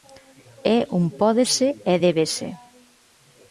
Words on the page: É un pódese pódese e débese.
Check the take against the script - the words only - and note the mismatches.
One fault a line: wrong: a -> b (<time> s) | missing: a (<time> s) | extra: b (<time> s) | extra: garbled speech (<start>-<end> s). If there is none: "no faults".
missing: pódese (1.7 s)